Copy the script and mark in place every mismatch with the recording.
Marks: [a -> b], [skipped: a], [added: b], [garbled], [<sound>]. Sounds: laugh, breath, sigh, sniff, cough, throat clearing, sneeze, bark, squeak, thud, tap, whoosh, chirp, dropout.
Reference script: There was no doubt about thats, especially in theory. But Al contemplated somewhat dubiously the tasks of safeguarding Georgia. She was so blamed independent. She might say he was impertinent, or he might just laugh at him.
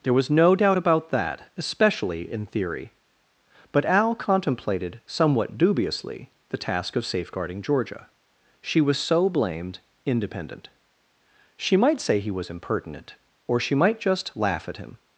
There was no doubt about [thats, -> that] especially in theory. But Al contemplated somewhat dubiously the [tasks -> task] of safeguarding Georgia. She was so blamed independent. She might say he was impertinent, or [he -> she] might just laugh at him.